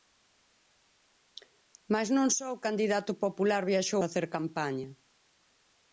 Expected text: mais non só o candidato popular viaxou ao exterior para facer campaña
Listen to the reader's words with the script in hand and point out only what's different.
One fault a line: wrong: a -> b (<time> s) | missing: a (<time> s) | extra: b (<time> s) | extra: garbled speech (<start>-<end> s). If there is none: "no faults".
missing: ao exterior para (4.0 s)